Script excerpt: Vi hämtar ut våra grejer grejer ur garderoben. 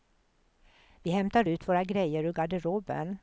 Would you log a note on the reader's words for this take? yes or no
yes